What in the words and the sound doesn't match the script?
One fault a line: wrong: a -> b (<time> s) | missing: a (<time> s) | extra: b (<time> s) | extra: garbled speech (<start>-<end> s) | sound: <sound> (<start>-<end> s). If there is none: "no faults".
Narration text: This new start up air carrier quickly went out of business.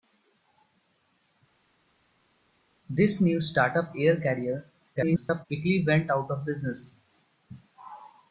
extra: garbled speech (5.0-5.5 s)